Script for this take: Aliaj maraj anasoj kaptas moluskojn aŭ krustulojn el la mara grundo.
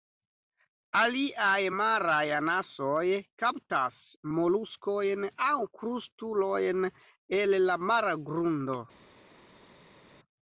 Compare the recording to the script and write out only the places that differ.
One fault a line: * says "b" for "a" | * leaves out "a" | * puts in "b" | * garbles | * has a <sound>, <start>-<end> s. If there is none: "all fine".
all fine